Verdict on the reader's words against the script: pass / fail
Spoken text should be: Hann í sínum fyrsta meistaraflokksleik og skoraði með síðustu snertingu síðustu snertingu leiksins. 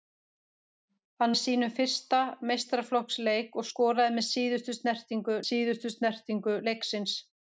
pass